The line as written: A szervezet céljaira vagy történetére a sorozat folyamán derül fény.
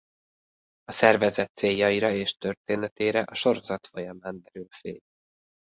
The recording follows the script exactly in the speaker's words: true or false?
false